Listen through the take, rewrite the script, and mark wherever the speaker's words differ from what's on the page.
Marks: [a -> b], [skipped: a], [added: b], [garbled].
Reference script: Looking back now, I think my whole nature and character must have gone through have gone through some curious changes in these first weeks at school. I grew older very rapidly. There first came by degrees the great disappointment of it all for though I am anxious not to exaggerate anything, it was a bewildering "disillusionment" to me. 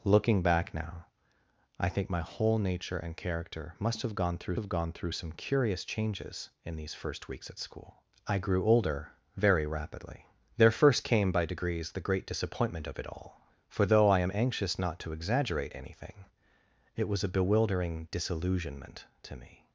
Looking back now, I think my whole nature and character must have gone through have gone through some curious changes in these first weeks at school. I grew older very rapidly. There first came by degrees the great disappointment of it all for though I am anxious not to exaggerate anything, it was a bewildering "disillusionment" to me.